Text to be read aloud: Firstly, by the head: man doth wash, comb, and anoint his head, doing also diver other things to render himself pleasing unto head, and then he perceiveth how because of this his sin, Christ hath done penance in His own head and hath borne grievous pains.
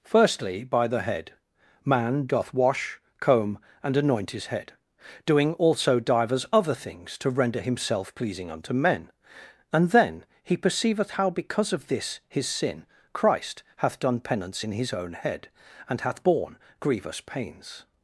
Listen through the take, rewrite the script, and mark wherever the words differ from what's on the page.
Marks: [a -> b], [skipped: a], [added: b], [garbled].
Firstly, by the head: man doth wash, comb, and anoint his head, doing also [diver -> divers] other things to render himself pleasing unto [head, -> men] and then he perceiveth how because of this his sin, Christ hath done penance in His own head and hath borne grievous pains.